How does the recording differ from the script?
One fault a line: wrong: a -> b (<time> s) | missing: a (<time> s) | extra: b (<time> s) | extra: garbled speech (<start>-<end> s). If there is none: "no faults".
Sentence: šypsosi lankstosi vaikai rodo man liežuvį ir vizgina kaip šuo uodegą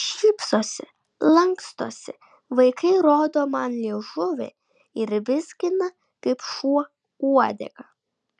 no faults